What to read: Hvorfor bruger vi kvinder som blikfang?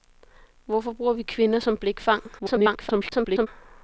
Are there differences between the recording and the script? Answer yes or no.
yes